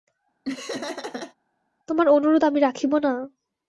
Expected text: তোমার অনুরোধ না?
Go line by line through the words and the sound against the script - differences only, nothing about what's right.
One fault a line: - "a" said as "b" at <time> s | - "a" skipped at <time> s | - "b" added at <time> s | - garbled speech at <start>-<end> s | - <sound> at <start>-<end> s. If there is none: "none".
- laugh at 0.4-1.3 s
- "আমি রাখিব" added at 2.4 s